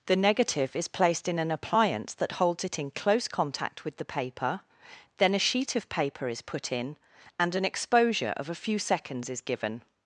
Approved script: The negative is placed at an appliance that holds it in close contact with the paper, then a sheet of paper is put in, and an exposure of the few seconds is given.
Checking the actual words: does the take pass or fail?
fail